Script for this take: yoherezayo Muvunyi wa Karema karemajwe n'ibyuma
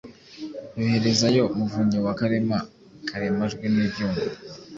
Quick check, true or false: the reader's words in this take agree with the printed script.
true